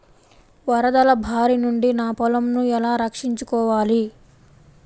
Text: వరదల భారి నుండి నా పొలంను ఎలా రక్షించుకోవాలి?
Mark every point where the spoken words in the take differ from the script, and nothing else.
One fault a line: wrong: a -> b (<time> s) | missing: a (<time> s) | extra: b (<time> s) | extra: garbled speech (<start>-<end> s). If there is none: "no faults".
no faults